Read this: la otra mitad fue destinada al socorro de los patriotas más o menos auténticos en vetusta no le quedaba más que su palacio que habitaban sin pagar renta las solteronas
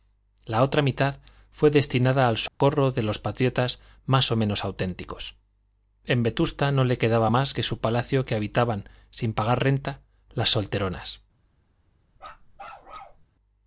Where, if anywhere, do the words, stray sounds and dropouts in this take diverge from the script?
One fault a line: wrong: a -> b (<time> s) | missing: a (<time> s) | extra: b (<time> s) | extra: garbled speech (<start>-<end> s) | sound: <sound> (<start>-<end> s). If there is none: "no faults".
sound: dropout (2.5-2.6 s)
sound: bark (12.2-13.2 s)